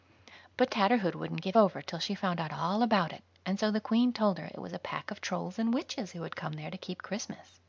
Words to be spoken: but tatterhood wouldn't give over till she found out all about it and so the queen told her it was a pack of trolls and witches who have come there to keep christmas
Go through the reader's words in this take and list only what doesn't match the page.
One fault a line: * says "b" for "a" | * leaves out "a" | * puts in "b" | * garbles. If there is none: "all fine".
* says "had" for "have"